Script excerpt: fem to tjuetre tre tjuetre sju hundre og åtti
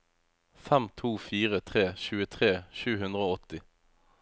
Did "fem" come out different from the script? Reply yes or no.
no